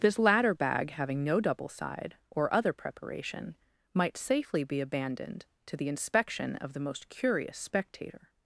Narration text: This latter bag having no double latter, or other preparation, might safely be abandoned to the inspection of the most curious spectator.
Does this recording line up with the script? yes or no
no